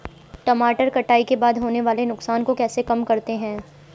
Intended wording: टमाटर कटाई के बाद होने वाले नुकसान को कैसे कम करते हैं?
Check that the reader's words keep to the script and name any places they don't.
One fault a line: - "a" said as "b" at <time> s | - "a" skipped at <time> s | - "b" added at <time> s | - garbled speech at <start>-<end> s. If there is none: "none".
none